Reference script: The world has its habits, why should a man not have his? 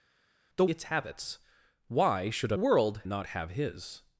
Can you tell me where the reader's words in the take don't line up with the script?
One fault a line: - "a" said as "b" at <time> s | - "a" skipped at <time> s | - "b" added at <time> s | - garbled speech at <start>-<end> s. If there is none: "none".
- "world has" skipped at 0.7 s
- "man" said as "world" at 2.5 s